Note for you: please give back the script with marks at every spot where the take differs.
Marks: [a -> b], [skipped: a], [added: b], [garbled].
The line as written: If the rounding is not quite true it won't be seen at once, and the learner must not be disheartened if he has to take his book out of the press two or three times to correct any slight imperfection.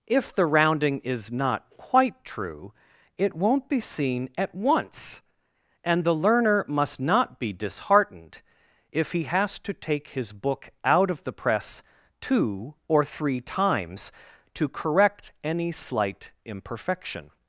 If the rounding is not quite true it won't be seen at once, and the learner must not be disheartened if he has to take his book out of the press two or three times to correct any slight imperfection.